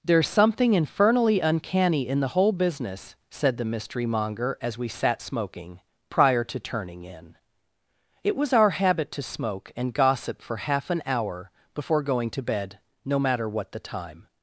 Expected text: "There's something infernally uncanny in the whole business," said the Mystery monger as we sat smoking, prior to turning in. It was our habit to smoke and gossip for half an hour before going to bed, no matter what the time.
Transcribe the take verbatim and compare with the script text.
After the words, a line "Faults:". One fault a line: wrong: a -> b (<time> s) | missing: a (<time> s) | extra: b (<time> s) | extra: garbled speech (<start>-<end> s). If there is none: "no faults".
"There's something infernally uncanny in the whole business," said the Mystery monger as we sat smoking, prior to turning in. It was our habit to smoke and gossip for half an hour before going to bed, no matter what the time.
Faults:
no faults